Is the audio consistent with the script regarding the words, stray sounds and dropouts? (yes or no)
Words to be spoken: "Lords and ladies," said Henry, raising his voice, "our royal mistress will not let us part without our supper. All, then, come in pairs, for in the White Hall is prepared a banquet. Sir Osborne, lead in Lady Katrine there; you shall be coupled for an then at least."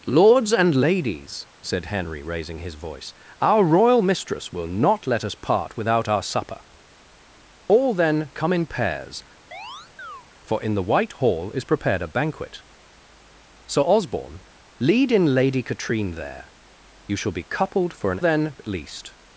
no